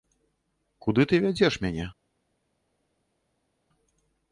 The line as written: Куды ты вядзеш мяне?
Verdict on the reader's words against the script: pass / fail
pass